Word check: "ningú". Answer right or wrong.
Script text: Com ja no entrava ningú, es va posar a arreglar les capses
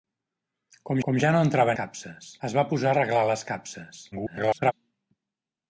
wrong